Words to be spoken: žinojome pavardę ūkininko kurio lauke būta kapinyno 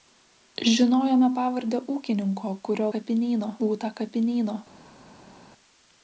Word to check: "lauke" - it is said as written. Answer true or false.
false